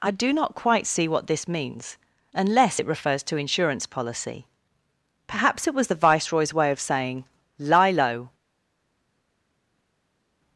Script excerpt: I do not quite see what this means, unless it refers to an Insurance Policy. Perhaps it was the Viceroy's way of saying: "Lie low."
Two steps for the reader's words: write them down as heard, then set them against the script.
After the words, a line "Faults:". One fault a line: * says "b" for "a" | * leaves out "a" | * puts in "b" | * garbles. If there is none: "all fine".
I do not quite see what this means, unless it refers to Insurance Policy. Perhaps it was the Viceroy's way of saying: "Lie low."
Faults:
* leaves out "an"